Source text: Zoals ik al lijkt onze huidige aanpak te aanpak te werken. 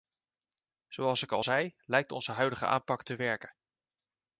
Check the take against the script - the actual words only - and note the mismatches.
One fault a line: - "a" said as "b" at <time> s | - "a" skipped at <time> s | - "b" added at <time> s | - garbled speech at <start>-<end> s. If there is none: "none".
- "zei" added at 1.4 s
- "aanpak te" skipped at 3.1 s